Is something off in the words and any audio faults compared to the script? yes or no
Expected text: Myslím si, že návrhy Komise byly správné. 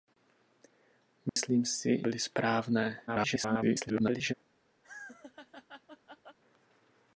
yes